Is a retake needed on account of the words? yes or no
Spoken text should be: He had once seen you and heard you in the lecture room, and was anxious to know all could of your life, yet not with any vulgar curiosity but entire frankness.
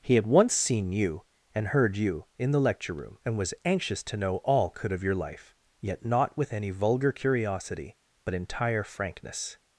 no